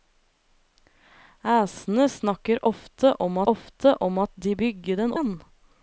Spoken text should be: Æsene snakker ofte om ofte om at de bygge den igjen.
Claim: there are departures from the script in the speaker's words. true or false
false